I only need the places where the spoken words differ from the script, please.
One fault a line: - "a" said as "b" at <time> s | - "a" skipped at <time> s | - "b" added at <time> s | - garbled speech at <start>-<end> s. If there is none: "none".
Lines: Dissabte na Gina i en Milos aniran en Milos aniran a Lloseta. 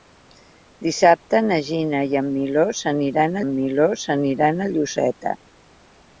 none